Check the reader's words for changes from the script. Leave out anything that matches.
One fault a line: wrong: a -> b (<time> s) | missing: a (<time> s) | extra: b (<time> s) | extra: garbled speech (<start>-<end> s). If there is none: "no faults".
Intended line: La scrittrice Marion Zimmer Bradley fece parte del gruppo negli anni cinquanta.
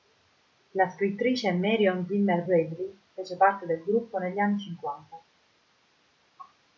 no faults